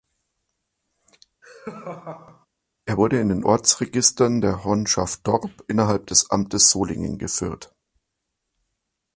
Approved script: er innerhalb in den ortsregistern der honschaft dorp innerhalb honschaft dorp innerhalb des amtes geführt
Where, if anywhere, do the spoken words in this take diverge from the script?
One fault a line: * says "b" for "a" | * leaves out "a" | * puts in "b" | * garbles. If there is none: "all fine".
* says "wurde" for "innerhalb"
* leaves out "honschaft dorp innerhalb"
* puts in "solingen"